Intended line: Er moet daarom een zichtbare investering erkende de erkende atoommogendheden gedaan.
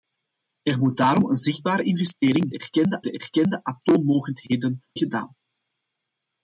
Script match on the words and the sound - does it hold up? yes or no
yes